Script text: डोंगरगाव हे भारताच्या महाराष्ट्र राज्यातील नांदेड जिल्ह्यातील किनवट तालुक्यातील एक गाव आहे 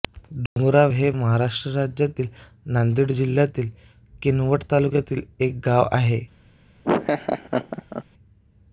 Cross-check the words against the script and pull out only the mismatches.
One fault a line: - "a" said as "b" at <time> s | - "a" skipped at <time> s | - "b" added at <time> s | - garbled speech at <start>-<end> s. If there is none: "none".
- "भारताच्या" skipped at 1.1 s